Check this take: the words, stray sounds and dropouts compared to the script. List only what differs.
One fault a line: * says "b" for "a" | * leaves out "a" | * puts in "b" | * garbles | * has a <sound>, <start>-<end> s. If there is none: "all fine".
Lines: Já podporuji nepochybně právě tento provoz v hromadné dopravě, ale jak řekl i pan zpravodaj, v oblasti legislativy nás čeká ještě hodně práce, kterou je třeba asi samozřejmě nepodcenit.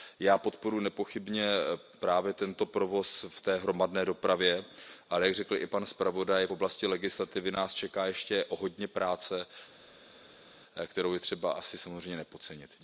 * puts in "té"